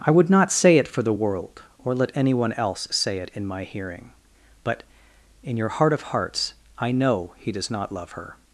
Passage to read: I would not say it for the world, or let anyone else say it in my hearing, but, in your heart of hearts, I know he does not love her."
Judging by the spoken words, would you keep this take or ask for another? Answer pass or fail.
pass